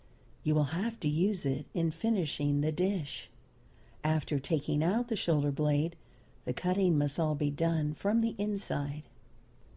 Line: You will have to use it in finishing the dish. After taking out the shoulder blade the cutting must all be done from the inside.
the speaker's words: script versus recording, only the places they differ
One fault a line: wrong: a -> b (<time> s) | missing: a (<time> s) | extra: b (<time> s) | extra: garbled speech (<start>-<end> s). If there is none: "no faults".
no faults